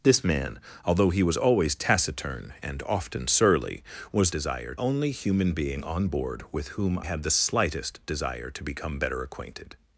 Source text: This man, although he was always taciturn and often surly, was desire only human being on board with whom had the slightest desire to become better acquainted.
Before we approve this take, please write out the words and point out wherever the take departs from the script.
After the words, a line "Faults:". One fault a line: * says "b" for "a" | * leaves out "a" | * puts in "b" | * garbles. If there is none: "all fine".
This man, although he was always taciturn and often surly, was desire only human being on board with whom had the slightest desire to become better acquainted.
Faults:
all fine